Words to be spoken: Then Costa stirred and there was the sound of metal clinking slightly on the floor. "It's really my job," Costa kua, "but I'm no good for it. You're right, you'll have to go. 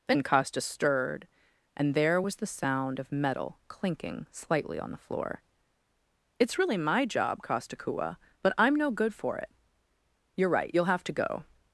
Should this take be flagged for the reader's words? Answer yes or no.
no